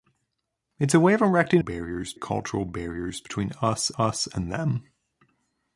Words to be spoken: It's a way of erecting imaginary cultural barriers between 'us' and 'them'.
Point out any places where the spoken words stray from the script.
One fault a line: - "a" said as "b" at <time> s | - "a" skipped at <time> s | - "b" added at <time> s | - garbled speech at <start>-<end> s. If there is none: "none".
- "imaginary" said as "barriers" at 1.6 s
- "us" added at 4.0 s